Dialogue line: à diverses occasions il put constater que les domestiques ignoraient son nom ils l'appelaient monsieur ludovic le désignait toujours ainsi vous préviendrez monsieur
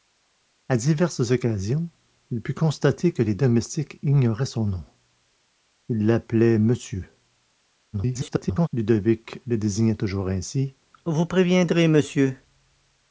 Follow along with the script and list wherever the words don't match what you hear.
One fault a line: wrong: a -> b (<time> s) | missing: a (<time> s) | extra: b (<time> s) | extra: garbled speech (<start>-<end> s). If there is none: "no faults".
extra: garbled speech (7.9-8.7 s)